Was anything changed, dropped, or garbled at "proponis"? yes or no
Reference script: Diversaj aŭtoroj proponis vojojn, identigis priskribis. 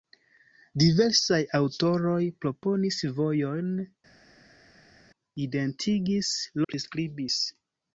no